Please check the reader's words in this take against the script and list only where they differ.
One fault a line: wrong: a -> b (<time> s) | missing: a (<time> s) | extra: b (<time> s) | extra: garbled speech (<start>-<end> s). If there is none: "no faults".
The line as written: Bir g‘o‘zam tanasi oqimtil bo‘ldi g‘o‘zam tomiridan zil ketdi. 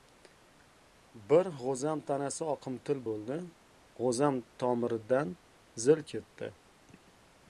no faults